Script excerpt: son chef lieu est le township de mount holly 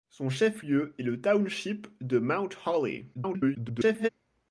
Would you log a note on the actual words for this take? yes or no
yes